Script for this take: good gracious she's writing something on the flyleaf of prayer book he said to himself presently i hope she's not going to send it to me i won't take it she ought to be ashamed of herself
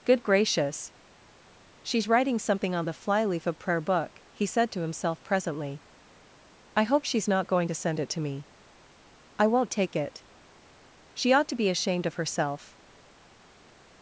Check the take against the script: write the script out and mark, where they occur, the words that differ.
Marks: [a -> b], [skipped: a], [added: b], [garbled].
good gracious she's writing something on the flyleaf of prayer book he said to himself presently i hope she's not going to send it to me i won't take it she ought to be ashamed of herself